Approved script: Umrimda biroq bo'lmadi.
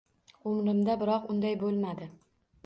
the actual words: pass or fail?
fail